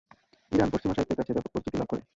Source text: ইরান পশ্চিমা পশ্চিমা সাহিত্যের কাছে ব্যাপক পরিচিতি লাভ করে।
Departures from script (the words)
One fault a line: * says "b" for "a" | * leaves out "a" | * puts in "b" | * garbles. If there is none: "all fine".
* leaves out "পশ্চিমা"